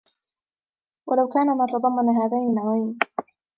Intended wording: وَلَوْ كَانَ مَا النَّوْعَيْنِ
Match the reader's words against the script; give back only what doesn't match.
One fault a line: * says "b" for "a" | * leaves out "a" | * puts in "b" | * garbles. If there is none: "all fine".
* puts in "تَضَمَّنَ هَذَيْنِ"